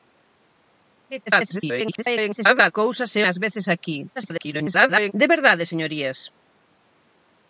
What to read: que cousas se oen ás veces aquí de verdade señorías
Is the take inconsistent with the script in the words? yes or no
yes